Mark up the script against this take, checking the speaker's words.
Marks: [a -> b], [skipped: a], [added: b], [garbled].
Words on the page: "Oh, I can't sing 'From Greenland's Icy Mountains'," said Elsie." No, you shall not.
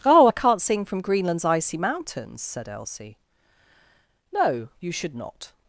"Oh, I can't sing 'From Greenland's Icy Mountains'," said Elsie." No, you [shall -> should] not.